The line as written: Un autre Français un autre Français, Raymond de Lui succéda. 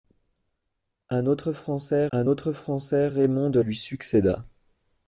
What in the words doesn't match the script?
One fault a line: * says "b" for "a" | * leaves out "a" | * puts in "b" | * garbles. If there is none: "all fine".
all fine